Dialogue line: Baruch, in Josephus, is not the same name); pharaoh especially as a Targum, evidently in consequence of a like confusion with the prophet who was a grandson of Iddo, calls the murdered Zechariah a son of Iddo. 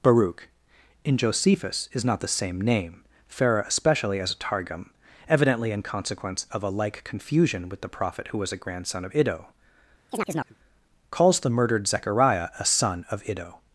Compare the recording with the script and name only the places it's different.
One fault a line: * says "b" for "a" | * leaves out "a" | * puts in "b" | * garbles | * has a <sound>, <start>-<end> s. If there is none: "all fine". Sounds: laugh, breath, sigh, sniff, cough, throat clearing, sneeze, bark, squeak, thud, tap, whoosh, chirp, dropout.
* has a chirp, 10.1-10.6 s